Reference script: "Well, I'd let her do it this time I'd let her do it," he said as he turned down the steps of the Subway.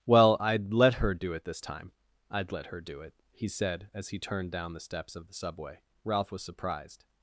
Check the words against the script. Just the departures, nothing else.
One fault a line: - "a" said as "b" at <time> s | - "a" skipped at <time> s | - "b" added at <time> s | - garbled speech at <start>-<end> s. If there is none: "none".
- "Ralph was surprised" added at 6.0 s